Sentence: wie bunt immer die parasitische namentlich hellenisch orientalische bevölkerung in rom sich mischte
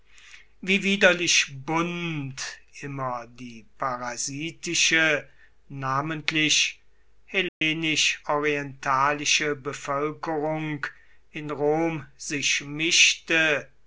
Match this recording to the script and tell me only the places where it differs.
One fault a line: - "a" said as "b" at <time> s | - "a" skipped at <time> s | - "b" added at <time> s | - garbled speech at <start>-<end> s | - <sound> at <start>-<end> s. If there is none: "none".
- "widerlich" added at 0.8 s
- dropout at 7.5-7.6 s